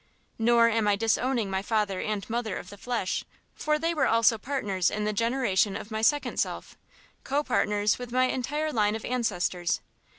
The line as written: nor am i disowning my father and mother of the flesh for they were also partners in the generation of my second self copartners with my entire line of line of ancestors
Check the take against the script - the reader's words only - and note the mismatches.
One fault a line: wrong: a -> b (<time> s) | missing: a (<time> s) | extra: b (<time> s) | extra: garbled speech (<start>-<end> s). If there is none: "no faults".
missing: line of (9.1 s)